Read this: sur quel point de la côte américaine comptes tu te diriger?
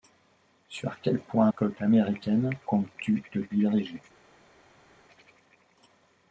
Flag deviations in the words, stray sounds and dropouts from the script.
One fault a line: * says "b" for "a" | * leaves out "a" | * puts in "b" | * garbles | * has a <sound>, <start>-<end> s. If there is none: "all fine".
* leaves out "de la"